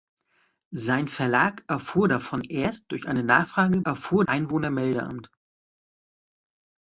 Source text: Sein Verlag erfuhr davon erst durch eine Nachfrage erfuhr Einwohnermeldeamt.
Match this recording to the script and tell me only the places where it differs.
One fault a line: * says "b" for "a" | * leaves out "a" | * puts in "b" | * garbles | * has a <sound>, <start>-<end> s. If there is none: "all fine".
all fine